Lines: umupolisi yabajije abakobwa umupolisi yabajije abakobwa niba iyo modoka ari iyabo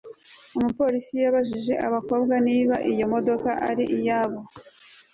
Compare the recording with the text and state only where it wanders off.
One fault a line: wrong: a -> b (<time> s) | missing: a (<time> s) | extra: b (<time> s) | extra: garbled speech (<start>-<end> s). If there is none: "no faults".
missing: umupolisi yabajije abakobwa (2.4 s)